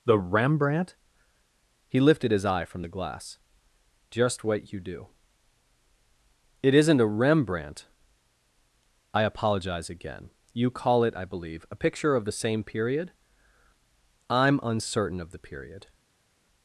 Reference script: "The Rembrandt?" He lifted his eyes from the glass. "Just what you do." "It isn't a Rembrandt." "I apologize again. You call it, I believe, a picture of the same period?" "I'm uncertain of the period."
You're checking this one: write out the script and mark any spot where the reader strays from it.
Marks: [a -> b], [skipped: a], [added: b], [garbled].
"The Rembrandt?" He lifted his [eyes -> eye] from the glass. "Just what you do." "It isn't a Rembrandt." "I apologize again. You call it, I believe, a picture of the same period?" "I'm uncertain of the period."